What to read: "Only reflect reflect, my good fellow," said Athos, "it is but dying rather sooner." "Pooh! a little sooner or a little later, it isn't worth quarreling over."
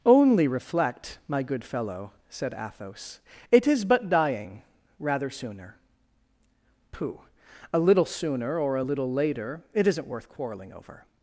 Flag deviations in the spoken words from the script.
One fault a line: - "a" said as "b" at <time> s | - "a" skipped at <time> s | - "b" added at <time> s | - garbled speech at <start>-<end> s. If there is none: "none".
- "reflect" skipped at 1.2 s